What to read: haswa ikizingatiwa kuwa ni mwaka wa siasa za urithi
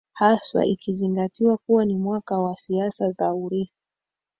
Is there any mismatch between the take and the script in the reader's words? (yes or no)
no